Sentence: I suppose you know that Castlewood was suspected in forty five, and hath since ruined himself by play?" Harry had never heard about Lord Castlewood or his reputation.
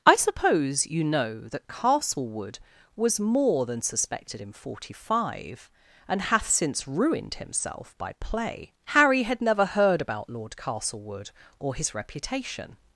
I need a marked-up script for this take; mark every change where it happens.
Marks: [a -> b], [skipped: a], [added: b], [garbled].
I suppose you know that Castlewood was [added: more than] suspected in forty five, and hath since ruined himself by play?" Harry had never heard about Lord Castlewood or his reputation.